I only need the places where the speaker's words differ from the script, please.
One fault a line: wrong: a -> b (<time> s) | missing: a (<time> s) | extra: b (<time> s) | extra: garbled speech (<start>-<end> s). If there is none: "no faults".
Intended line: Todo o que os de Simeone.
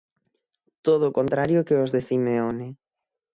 extra: contrario (1.2 s)